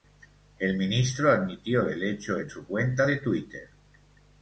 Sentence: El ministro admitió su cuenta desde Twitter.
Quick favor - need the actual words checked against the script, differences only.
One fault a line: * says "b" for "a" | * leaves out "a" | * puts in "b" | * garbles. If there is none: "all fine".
* puts in "el hecho en"
* says "de" for "desde"